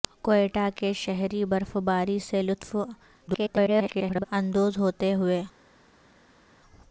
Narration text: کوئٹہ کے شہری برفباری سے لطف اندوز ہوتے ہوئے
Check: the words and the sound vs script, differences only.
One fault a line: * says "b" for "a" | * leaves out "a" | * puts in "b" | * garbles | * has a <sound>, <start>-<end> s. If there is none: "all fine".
* garbles